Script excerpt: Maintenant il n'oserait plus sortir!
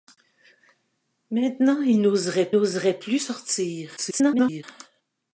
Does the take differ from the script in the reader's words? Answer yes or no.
yes